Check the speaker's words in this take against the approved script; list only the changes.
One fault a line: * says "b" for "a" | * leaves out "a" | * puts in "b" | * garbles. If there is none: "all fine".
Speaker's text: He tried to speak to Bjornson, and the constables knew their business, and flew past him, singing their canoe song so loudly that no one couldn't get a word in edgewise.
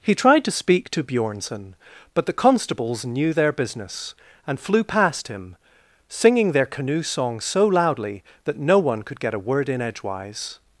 * says "but" for "and"
* says "could" for "couldn't"